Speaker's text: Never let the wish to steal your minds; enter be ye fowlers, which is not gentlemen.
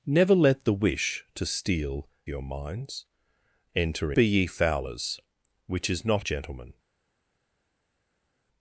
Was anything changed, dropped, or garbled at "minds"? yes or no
no